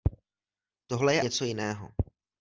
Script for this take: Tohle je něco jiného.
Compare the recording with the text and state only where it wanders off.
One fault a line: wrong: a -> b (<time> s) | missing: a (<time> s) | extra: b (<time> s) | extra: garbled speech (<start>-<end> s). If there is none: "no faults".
no faults